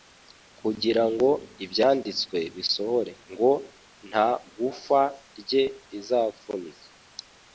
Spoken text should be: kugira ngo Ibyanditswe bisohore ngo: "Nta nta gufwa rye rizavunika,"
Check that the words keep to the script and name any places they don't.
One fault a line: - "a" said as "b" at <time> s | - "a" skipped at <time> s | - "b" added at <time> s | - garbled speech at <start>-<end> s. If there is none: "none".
- "nta" skipped at 4.3 s